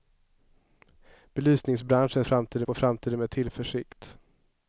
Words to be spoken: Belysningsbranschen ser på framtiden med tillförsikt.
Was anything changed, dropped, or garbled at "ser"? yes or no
yes